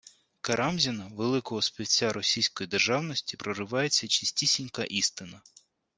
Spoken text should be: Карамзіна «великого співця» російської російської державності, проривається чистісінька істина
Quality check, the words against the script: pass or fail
fail